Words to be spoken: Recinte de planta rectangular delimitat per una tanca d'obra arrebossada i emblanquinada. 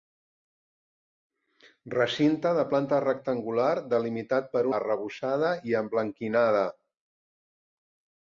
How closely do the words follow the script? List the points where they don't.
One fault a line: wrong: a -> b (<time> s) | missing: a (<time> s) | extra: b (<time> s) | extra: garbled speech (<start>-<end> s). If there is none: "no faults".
missing: una tanca d'obra (4.7 s)